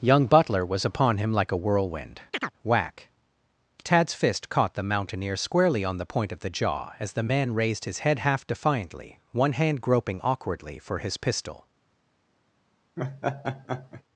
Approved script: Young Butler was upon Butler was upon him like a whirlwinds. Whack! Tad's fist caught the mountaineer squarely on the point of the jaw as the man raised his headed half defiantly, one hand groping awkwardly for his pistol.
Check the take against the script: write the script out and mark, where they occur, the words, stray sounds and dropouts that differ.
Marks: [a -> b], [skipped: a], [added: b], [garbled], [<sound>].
Young Butler was upon [skipped: Butler was upon] him like a [whirlwinds. -> whirlwind] [chirp] Whack! Tad's fist caught the mountaineer squarely on the point of the jaw as the man raised his [headed -> head] half defiantly, one hand groping awkwardly for his pistol. [laugh]